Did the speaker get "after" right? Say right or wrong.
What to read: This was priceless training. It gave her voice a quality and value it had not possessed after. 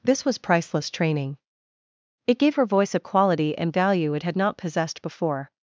wrong